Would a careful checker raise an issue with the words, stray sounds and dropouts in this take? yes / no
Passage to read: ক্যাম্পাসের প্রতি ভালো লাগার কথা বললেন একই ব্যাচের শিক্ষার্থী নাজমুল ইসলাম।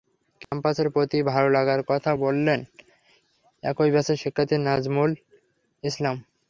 yes